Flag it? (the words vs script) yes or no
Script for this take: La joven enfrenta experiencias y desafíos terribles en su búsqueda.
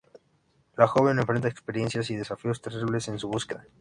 no